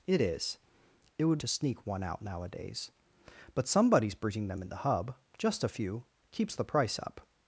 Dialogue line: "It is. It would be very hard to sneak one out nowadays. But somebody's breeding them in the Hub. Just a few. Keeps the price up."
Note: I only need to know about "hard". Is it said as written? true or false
false